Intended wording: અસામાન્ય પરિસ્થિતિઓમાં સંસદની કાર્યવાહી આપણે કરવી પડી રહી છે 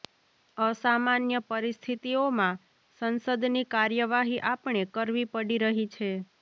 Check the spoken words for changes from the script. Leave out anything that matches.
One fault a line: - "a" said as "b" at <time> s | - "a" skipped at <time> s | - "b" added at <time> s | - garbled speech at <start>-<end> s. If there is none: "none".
none